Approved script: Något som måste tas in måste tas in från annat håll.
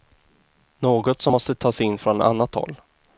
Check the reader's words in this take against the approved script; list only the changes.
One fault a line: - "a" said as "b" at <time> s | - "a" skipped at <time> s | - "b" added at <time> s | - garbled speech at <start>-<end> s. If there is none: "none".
- "måste tas in" skipped at 2.0 s